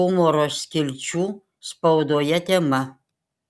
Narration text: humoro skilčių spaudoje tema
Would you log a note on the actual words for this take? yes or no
no